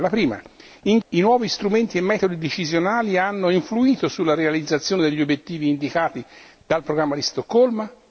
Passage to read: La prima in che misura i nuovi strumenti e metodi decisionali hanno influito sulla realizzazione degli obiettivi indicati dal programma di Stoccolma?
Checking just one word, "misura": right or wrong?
wrong